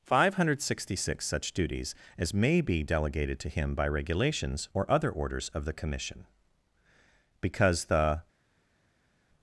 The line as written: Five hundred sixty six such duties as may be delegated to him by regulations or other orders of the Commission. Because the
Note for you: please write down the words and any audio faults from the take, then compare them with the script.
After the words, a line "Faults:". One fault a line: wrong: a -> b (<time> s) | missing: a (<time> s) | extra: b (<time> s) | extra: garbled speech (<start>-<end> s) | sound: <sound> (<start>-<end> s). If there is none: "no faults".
Five hundred sixty six such duties as may be delegated to him by regulations or other orders of the Commission. Because the
Faults:
no faults